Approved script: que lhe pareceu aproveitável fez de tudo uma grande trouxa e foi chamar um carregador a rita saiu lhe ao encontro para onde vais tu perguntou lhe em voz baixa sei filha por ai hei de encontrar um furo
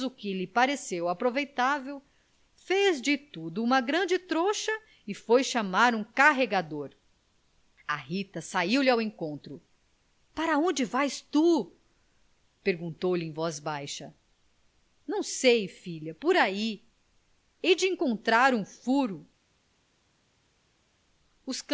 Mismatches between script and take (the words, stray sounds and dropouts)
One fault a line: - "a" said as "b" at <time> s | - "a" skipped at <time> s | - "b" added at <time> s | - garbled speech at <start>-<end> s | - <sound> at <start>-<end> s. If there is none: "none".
- "não" added at 15.1 s